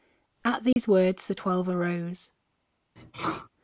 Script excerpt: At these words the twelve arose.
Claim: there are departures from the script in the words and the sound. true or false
true